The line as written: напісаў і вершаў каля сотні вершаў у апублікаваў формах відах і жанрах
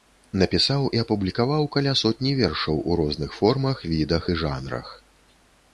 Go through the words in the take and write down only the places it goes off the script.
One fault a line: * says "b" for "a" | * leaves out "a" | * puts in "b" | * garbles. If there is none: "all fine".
* says "апублікаваў" for "вершаў"
* says "розных" for "апублікаваў"